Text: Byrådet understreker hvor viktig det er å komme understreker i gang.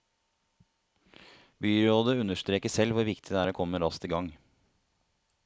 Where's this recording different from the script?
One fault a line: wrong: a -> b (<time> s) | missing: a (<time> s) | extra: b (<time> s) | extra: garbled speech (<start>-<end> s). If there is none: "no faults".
extra: selv (2.7 s)
wrong: understreker -> raskt (3.8 s)